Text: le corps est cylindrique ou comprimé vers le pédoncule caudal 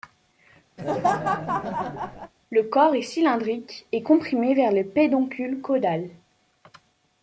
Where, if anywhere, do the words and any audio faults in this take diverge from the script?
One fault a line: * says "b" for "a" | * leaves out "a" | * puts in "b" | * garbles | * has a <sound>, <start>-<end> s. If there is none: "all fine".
* has a laugh, 0.8-2.3 s
* says "et" for "ou"